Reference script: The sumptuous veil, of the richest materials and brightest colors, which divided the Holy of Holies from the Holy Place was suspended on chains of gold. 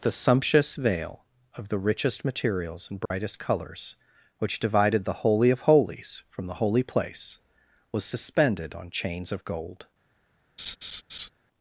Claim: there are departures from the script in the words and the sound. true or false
true